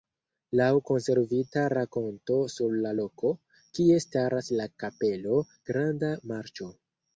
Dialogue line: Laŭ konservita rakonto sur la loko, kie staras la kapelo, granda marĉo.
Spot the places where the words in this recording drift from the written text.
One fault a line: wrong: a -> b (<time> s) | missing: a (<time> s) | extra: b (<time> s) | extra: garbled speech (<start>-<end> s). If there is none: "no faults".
no faults